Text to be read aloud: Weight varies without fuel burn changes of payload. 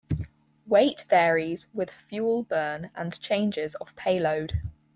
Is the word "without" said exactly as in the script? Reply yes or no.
no